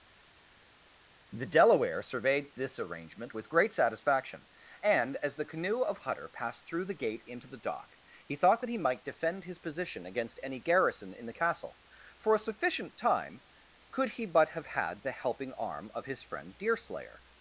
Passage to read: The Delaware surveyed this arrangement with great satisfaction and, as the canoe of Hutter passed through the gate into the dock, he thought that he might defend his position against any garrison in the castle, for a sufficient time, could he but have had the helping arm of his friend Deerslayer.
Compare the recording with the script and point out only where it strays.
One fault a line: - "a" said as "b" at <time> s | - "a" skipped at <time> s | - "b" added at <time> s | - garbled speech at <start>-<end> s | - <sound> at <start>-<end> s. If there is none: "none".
none